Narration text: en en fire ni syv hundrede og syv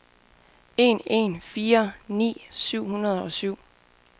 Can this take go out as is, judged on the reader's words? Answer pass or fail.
pass